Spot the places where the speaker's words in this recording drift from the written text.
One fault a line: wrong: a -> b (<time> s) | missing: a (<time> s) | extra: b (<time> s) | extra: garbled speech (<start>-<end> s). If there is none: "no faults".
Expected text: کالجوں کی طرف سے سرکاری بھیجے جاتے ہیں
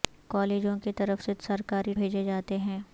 no faults